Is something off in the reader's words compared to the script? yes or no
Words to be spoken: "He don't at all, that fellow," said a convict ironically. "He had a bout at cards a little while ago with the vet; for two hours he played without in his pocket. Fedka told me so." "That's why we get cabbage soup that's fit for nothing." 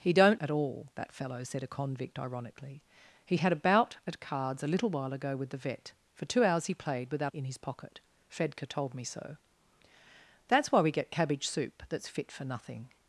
no